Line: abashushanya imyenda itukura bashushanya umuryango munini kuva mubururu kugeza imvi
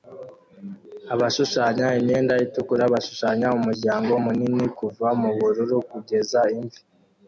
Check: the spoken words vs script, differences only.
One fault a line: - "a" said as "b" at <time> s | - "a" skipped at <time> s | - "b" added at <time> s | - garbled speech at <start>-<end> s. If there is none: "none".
none